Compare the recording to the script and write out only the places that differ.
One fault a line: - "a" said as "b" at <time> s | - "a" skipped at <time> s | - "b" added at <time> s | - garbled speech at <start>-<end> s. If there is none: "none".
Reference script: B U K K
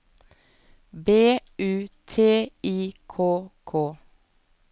- "T I" added at 2.1 s